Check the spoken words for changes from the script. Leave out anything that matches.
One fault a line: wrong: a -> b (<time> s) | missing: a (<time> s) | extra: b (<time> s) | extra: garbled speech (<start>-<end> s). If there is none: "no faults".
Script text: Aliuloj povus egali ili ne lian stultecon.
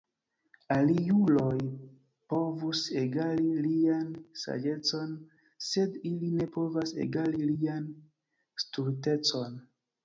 extra: lian saĝecon Sed (3.7 s)
extra: povas egali (6.6 s)